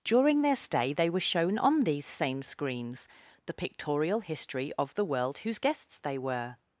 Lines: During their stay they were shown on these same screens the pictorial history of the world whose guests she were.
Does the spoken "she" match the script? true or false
false